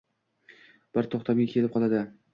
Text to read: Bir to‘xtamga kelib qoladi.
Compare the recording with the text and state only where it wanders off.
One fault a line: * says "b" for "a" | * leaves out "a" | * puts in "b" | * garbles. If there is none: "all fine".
all fine